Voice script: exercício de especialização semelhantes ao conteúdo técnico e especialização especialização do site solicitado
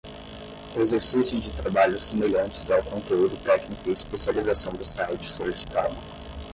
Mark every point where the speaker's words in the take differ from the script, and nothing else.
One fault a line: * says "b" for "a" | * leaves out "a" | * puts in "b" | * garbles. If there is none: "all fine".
* says "trabalhos" for "especialização"
* leaves out "especialização"